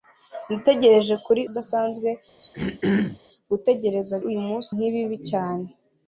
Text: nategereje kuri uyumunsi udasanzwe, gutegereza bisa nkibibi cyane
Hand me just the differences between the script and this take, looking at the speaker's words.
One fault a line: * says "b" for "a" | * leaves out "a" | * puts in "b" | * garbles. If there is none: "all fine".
* leaves out "uyumunsi"
* says "uyumunsi" for "bisa"